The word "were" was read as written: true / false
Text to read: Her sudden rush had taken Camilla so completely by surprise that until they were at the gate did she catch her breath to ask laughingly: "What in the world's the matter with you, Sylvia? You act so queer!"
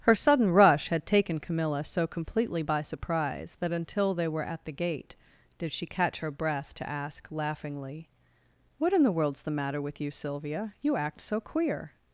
true